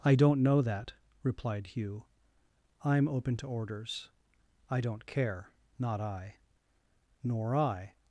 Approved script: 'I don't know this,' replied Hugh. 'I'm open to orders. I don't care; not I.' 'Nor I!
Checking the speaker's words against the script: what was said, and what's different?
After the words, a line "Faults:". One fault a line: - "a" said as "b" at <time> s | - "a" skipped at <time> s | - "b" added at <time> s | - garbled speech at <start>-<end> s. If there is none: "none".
'I don't know that,' replied Hugh. 'I'm open to orders. I don't care; not I.' 'Nor I!
Faults:
- "this" said as "that" at 0.6 s